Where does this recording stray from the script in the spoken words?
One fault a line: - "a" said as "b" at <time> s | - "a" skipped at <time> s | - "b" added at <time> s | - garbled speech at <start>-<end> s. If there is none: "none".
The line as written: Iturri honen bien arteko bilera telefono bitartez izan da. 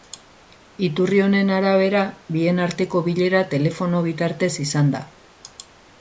- "arabera" added at 1.6 s